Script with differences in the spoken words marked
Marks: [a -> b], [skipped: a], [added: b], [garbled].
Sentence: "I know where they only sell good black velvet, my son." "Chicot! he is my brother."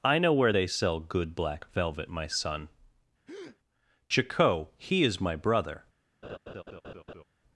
"I know where they [skipped: only] sell good black velvet, my son." "Chicot! he is my brother."